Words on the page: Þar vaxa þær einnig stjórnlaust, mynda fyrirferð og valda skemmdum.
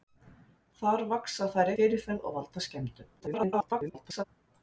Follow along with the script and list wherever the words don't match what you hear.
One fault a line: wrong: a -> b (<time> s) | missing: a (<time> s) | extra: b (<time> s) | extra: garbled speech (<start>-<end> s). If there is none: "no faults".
missing: einnig stjórnlaust mynda (1.7 s)
extra: garbled speech (3.2-4.2 s)